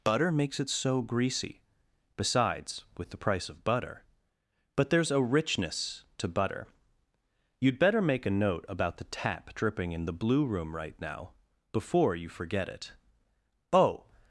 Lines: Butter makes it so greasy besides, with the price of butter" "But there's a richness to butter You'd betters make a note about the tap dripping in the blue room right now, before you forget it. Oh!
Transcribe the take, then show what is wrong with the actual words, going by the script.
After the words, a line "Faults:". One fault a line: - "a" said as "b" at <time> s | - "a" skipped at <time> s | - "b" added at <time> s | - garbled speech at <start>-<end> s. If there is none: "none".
Butter makes it so greasy besides, with the price of butter" "But there's a richness to butter You'd better make a note about the tap dripping in the blue room right now, before you forget it. Oh!
Faults:
- "betters" said as "better" at 7.8 s